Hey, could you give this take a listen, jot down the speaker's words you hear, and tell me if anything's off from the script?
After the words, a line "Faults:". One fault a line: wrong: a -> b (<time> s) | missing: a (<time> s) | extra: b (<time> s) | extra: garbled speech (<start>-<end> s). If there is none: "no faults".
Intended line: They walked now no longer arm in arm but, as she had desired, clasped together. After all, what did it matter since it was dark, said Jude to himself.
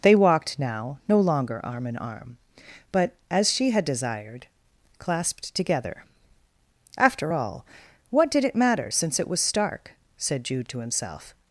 They walked now no longer arm in arm but, as she had desired, clasped together. After all, what did it matter since it was stark, said Jude to himself.
Faults:
wrong: dark -> stark (9.4 s)